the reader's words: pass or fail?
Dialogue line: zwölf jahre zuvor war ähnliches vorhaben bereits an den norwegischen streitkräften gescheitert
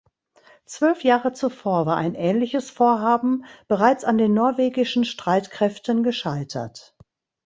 fail